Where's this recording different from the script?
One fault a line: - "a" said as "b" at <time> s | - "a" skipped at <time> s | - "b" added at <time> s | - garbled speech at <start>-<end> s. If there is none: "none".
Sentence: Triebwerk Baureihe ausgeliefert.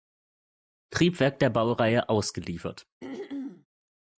- "der" added at 1.4 s